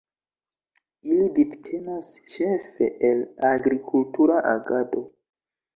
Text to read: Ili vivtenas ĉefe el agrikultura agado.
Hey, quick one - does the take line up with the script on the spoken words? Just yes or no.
yes